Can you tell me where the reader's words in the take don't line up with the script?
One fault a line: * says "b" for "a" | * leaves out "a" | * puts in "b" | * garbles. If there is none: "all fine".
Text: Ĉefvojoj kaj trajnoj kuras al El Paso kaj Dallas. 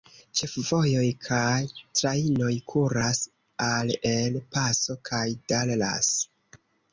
all fine